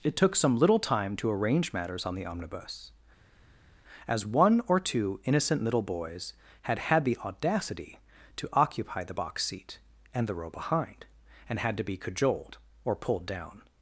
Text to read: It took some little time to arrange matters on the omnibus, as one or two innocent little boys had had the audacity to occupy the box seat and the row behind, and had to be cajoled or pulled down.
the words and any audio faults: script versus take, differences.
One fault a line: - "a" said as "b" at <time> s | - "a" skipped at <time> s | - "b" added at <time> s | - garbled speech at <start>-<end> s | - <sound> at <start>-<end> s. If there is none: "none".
none